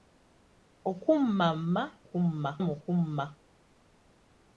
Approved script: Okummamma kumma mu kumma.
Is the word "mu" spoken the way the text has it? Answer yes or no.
yes